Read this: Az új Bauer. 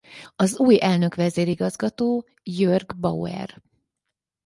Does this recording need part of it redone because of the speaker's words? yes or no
yes